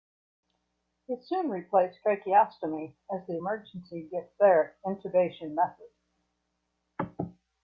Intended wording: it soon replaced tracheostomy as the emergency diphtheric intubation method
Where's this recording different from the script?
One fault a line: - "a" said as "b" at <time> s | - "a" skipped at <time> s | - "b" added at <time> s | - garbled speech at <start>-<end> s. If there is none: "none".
none